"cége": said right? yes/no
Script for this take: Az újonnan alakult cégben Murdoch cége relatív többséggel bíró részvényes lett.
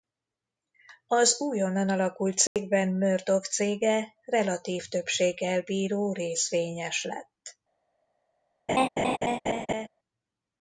yes